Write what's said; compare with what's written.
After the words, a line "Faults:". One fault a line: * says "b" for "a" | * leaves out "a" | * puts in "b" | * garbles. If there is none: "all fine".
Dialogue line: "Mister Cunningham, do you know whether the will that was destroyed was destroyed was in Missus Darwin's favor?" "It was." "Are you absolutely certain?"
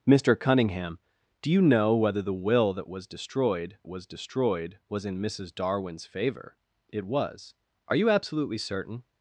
"Mister Cunningham, do you know whether the will that was destroyed was destroyed was in Missus Darwin's favor?" "It was." "Are you absolutely certain?"
Faults:
all fine